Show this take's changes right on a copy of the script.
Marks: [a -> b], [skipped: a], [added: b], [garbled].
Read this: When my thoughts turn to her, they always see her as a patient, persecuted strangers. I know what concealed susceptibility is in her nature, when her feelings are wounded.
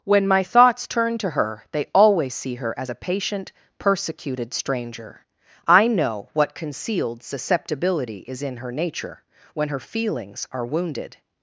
When my thoughts turn to her, they always see her as a patient, persecuted [strangers. -> stranger] I know what concealed susceptibility is in her nature, when her feelings are wounded.